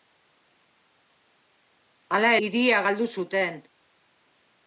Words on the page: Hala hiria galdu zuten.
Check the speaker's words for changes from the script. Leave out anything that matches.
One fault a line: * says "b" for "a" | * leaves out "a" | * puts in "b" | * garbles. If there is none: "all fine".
all fine